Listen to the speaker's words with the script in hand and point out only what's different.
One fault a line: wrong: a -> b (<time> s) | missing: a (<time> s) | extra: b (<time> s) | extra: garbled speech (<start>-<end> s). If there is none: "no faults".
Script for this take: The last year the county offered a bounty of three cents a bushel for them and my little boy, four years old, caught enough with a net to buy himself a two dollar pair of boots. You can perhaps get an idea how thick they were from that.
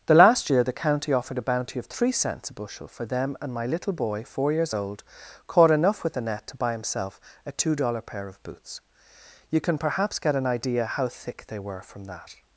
wrong: a -> the (6.1 s)